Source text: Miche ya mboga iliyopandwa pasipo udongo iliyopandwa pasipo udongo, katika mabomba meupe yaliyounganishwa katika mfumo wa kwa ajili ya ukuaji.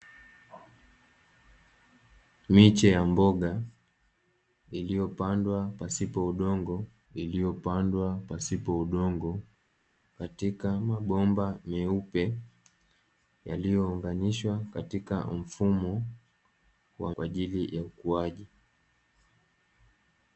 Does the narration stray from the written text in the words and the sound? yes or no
no